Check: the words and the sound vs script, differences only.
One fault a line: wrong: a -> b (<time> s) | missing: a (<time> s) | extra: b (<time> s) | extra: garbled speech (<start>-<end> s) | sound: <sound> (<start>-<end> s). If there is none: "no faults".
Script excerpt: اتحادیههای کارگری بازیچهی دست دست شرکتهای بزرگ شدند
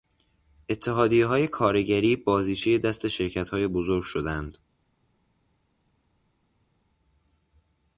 missing: دست (3.1 s)